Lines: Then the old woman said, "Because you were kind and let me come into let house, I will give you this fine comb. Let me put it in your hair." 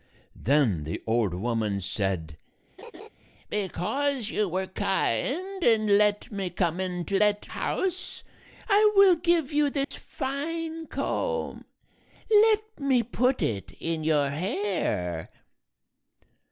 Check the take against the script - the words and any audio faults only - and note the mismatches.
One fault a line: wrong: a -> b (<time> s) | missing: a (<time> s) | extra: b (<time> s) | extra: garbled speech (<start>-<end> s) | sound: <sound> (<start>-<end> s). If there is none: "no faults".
sound: laugh (2.8-3.1 s)
sound: dropout (9.8-9.9 s)